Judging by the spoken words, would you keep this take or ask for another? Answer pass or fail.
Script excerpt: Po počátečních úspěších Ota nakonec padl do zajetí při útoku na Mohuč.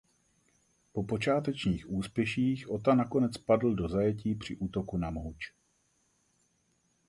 pass